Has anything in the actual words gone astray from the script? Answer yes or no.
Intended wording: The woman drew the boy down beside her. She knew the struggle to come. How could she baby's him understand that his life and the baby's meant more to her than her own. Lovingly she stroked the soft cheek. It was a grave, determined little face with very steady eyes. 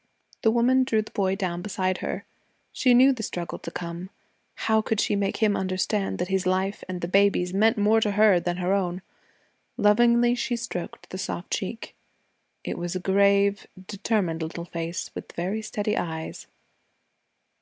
yes